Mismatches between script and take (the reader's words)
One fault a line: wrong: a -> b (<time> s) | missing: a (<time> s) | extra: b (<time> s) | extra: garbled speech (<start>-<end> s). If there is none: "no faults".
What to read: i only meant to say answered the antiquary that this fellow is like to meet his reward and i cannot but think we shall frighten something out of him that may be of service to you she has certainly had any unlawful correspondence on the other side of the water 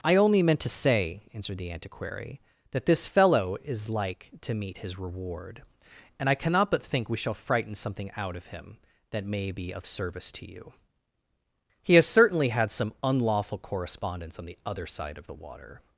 wrong: she -> he (11.8 s)
wrong: any -> some (12.7 s)